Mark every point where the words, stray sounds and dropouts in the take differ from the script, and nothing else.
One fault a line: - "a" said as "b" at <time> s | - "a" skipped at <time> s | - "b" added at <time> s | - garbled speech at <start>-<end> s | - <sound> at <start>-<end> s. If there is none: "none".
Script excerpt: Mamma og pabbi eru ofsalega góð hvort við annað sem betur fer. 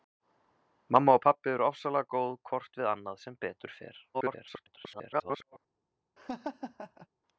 - garbled speech at 4.1-5.6 s
- laugh at 6.2-7.1 s